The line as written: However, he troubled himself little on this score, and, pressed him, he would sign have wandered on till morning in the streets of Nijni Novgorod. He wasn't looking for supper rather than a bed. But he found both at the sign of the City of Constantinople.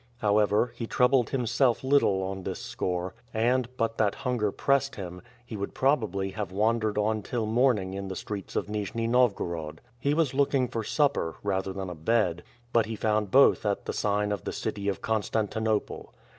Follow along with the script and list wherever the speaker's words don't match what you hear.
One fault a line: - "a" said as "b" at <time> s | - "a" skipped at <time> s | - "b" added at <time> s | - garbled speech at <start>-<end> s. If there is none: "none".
- "but that hunger" added at 3.8 s
- "sign" said as "probably" at 5.8 s
- "wasn't" said as "was" at 10.2 s